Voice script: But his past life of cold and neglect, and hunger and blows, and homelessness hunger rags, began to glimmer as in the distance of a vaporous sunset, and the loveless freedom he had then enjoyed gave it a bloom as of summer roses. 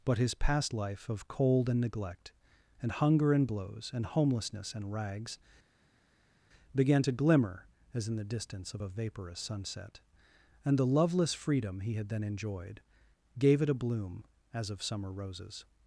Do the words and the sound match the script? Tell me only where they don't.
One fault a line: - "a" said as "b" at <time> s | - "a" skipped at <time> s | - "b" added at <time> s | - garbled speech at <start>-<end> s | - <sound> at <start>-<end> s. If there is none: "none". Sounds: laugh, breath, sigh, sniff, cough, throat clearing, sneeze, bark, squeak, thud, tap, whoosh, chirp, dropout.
- "hunger" said as "and" at 4.7 s